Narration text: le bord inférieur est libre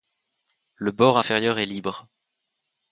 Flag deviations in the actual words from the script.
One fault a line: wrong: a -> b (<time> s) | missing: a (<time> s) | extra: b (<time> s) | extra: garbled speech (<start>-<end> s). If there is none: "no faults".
no faults